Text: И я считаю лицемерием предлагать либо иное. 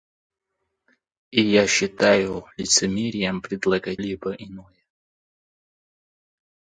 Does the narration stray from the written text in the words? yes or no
no